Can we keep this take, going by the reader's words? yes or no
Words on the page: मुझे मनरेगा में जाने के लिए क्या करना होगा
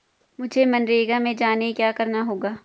no